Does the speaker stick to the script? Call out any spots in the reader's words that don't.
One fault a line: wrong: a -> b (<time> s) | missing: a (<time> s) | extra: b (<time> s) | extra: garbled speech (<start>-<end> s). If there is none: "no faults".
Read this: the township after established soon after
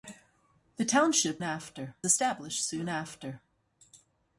no faults